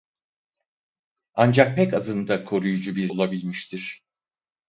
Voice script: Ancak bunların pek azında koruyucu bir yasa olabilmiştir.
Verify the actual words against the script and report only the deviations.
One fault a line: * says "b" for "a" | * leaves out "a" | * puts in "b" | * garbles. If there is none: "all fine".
* leaves out "bunların"
* leaves out "yasa"